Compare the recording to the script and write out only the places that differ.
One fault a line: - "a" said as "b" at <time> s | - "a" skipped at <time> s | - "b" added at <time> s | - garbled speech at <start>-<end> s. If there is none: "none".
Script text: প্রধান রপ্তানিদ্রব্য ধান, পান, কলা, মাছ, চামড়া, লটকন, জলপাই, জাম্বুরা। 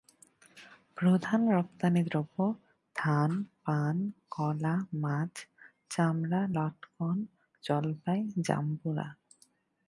none